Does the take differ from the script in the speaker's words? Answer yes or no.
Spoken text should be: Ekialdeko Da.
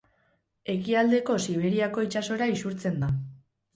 yes